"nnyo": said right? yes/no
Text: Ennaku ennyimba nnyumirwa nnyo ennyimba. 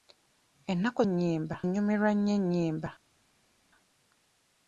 yes